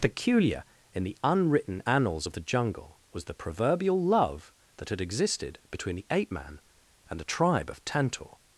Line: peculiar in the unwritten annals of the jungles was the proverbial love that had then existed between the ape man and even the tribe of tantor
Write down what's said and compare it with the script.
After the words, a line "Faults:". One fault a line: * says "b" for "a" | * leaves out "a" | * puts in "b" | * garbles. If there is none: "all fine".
peculiar in the unwritten annals of the jungle was the proverbial love that had existed between the ape man and the tribe of tantor
Faults:
* says "jungle" for "jungles"
* leaves out "then"
* leaves out "even"